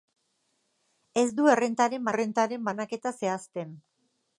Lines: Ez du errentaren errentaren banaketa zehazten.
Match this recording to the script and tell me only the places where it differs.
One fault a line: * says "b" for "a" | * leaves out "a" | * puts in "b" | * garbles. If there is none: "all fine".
all fine